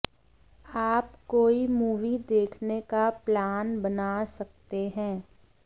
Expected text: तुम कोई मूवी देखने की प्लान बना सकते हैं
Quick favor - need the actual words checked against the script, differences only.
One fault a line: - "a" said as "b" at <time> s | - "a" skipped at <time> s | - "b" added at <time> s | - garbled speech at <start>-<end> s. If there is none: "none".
- "तुम" said as "आप" at 0.7 s
- "की" said as "का" at 2.9 s